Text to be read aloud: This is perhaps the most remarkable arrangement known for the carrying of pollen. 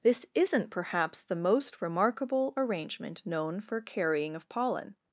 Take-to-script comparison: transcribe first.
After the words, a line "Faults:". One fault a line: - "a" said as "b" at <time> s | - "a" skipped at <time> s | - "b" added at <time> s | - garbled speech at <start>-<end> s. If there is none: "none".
This isn't perhaps the most remarkable arrangement known for carrying of pollen.
Faults:
- "is" said as "isn't" at 0.3 s
- "the" skipped at 3.8 s